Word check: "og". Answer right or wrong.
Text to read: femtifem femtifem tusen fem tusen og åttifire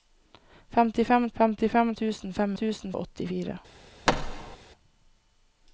right